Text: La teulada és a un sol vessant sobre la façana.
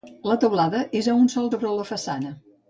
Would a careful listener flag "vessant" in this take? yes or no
yes